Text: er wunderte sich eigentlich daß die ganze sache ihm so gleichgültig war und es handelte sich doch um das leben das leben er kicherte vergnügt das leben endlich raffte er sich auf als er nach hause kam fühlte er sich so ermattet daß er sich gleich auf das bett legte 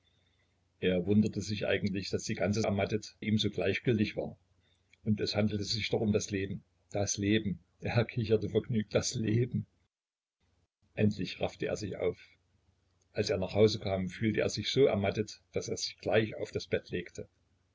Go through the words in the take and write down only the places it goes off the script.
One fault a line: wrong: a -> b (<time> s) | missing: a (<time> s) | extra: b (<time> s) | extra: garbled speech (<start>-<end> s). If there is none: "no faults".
wrong: sache -> ermattet (2.6 s)